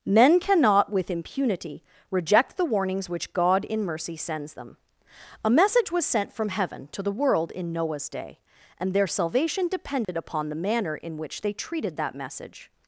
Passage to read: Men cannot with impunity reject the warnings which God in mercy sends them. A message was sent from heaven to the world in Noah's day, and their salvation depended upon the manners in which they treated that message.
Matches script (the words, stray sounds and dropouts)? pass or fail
fail